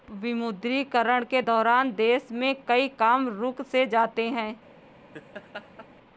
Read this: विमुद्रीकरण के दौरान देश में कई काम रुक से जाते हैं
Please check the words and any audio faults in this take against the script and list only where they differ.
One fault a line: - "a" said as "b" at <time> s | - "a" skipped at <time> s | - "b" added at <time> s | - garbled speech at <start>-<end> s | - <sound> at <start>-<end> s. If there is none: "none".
- laugh at 5.1-5.9 s